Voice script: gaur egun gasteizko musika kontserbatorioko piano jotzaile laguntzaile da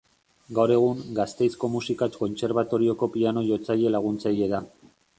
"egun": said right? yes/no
yes